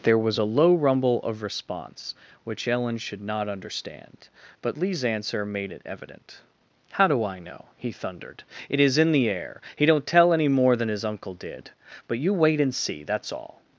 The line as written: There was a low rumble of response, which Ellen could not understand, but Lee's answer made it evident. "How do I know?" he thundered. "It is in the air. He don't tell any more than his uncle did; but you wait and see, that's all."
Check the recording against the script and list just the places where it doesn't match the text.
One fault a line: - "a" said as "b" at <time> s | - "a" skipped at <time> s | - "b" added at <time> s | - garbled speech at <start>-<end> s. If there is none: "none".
- "could" said as "should" at 3.0 s